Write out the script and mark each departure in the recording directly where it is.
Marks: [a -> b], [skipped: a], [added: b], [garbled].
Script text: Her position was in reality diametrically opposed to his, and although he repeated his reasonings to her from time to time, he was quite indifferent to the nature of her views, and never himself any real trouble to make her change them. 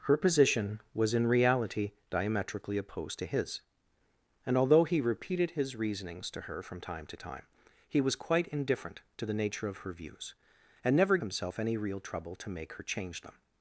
Her position was in reality diametrically opposed to his, and although he repeated his reasonings to her from time to time, he was quite indifferent to the nature of her views, and never himself any real trouble to make her change them.